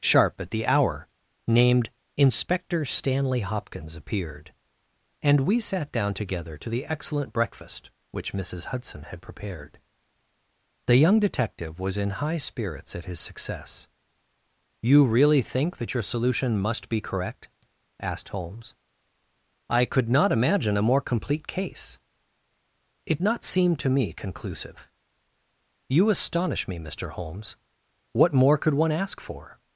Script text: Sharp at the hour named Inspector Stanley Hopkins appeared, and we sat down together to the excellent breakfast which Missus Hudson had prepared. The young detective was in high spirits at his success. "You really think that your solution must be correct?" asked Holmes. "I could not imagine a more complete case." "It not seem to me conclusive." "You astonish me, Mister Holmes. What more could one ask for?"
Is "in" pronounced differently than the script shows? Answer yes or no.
no